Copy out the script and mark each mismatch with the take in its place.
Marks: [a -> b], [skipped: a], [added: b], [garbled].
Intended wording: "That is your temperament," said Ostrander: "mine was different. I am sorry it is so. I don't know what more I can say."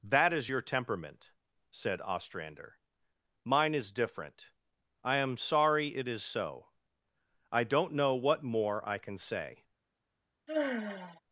"That is your temperament," said Ostrander: "mine [was -> is] different. I am sorry it is so. I don't know what more I can say."